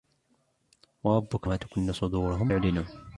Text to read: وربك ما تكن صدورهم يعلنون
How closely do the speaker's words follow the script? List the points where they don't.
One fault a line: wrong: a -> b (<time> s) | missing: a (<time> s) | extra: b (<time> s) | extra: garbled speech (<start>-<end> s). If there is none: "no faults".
no faults